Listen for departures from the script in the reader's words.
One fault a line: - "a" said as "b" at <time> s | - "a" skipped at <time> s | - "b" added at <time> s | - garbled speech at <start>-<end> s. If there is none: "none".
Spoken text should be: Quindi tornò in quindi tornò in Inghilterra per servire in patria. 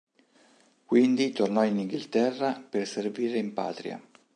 - "quindi tornò in" skipped at 1.8 s